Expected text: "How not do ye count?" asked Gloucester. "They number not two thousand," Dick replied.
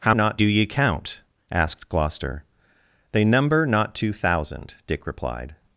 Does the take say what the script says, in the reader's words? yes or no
yes